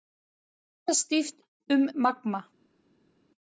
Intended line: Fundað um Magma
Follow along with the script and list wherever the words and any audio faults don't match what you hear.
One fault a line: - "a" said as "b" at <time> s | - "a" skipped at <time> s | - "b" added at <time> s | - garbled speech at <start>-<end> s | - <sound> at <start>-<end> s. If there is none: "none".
- "stíft" added at 1.0 s